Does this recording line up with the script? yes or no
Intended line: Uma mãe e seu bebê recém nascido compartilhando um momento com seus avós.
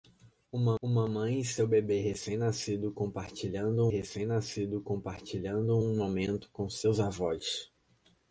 no